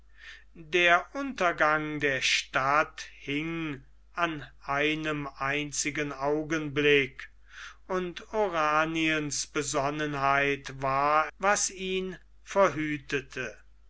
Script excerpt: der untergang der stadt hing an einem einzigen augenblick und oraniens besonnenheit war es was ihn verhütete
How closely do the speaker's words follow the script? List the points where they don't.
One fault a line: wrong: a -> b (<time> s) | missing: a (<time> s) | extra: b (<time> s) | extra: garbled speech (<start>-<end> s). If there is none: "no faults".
missing: es (11.3 s)